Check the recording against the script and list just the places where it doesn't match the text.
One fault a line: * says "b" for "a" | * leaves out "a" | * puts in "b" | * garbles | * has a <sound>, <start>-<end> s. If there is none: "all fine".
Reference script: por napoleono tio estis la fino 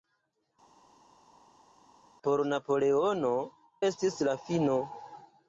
* leaves out "tio"